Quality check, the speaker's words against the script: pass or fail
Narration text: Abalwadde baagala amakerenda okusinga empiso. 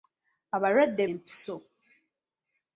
fail